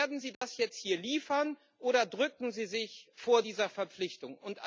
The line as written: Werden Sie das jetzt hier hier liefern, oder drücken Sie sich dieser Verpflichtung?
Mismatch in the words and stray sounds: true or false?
true